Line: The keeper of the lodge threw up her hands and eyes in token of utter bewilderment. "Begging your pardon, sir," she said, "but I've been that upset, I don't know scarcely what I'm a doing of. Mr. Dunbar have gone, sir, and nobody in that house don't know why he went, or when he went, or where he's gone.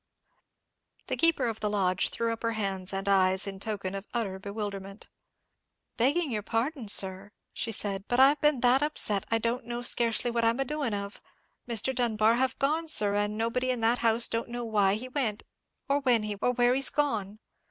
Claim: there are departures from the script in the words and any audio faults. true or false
true